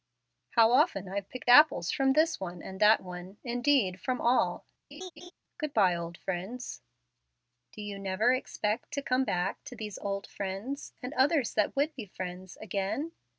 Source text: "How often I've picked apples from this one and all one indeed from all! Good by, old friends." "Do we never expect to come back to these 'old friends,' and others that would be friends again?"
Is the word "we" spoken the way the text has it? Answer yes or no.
no